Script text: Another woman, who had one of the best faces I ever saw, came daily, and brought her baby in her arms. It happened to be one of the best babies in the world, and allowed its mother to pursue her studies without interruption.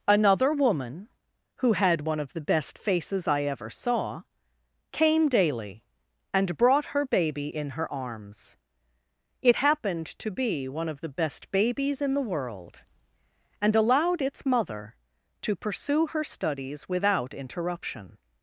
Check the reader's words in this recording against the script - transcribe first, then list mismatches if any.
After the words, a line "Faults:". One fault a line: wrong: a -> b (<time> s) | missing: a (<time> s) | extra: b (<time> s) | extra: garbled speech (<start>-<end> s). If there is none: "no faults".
Another woman, who had one of the best faces I ever saw, came daily, and brought her baby in her arms. It happened to be one of the best babies in the world, and allowed its mother to pursue her studies without interruption.
Faults:
no faults